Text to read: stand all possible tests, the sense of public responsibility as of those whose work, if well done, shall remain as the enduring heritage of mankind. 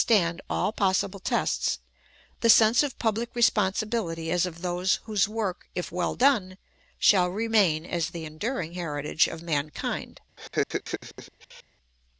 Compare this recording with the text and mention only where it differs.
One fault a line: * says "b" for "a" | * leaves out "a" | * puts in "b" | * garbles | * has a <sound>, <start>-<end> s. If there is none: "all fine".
* has a laugh, 10.4-11.6 s